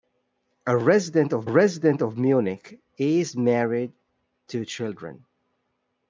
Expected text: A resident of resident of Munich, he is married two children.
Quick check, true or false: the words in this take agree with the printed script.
true